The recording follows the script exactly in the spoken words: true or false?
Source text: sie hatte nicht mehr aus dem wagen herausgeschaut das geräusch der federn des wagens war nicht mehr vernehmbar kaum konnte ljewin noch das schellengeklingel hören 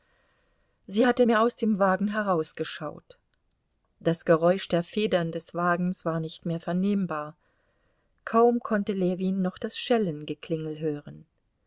false